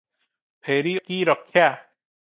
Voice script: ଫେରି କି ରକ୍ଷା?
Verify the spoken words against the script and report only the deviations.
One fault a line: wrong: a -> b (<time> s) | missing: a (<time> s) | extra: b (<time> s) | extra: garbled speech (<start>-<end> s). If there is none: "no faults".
no faults